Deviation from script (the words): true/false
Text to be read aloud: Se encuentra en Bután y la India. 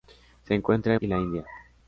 true